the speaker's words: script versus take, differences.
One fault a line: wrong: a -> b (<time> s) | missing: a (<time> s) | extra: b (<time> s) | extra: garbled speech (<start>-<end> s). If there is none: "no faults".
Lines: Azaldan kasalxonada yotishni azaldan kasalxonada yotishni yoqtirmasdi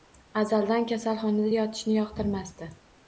missing: azaldan kasalxonada yotishni (2.0 s)